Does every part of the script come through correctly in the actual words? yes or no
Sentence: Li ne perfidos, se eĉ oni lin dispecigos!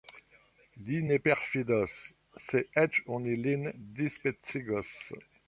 yes